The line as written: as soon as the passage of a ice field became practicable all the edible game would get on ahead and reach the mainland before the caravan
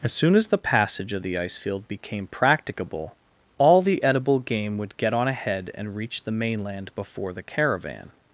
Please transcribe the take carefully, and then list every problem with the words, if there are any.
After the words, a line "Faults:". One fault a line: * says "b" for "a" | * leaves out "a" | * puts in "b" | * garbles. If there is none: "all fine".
as soon as the passage of the ice field became practicable all the edible game would get on ahead and reach the mainland before the caravan
Faults:
* says "the" for "a"